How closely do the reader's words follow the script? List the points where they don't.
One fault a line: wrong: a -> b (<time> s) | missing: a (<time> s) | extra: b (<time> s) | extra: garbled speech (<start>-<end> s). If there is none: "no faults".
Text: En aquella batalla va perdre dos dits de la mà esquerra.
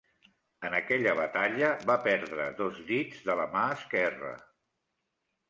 no faults